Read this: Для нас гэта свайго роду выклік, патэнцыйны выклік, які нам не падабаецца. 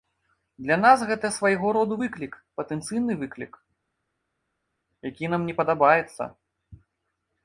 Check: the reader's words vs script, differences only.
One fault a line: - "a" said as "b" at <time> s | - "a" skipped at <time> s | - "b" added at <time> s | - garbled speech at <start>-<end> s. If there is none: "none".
none